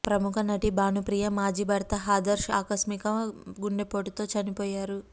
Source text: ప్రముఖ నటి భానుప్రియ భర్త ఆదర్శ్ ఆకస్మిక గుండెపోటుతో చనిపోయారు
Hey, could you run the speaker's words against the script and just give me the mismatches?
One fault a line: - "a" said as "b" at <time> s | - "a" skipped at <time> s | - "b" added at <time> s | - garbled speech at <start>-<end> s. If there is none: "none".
- "మాజీ" added at 1.4 s